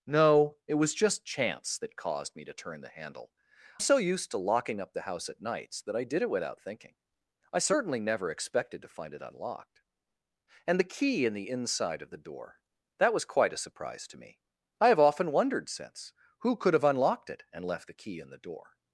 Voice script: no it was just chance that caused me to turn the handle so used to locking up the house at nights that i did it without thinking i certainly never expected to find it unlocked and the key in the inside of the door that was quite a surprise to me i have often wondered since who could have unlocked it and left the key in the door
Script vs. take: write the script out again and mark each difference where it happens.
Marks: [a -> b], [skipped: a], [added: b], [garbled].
no it was just chance that caused me to turn the handle so used to locking up the house at nights that i did it without thinking i certainly never expected to find it unlocked and the key in the inside of the door that was quite a surprise to me i have often wondered since who could have unlocked it and left the key in the door